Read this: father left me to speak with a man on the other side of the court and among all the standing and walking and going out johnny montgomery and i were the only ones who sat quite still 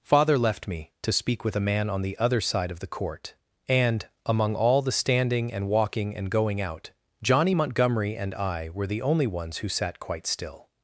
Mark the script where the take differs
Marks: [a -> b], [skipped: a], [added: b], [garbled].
father left me to speak with a man on the other side of the court and among all the standing and walking and going out johnny montgomery and i were the only ones who sat quite still